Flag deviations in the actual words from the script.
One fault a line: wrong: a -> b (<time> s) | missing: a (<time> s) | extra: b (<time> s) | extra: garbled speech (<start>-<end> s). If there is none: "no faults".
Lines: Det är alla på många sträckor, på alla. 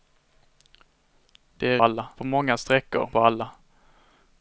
no faults